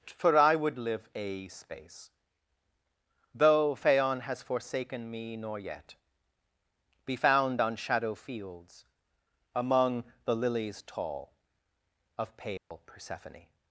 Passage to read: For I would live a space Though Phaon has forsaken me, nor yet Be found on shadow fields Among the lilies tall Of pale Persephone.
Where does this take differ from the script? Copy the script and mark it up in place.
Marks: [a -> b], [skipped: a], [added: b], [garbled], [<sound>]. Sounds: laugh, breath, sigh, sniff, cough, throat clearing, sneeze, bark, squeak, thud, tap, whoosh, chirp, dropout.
For I would live a space Though Phaon has forsaken me, nor yet Be found on shadow fields Among the lilies tall Of pale [dropout] Persephone.